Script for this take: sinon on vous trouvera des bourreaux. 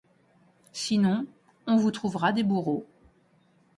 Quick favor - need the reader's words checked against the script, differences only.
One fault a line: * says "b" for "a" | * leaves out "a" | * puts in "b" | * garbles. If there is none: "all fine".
all fine